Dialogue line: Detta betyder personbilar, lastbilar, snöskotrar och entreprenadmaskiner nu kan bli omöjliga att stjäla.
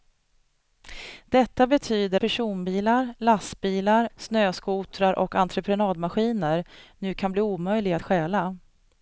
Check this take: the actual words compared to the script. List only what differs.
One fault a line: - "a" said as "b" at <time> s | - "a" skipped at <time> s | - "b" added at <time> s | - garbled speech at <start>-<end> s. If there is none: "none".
none